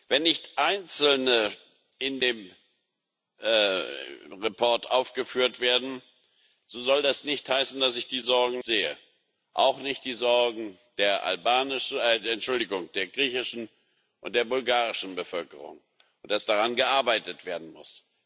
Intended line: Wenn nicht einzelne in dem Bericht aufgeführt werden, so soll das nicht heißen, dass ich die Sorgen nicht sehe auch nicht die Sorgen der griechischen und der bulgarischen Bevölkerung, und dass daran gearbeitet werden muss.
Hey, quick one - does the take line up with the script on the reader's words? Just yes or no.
no